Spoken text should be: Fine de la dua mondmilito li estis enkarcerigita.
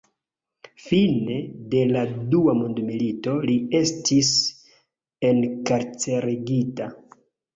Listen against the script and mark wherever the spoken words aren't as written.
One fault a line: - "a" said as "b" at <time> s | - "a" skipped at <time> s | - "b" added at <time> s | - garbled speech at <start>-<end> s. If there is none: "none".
none